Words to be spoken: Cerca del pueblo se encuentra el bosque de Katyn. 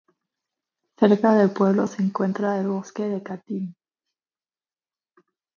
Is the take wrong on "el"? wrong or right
right